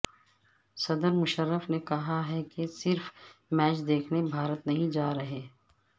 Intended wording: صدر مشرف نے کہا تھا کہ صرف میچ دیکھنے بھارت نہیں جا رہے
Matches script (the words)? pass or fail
fail